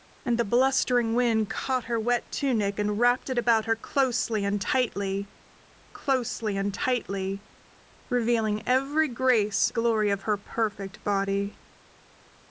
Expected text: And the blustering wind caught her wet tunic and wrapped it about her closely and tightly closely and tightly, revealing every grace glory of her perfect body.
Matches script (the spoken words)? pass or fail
pass